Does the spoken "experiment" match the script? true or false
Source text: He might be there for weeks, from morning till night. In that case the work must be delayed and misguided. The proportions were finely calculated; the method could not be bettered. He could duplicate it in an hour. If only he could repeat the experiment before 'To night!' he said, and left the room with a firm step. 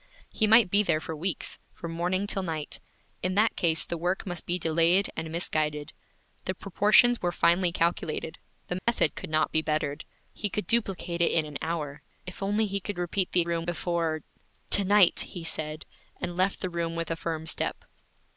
false